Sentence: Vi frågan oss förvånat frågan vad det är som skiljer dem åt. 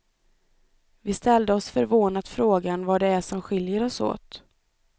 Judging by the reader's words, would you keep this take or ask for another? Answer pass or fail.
fail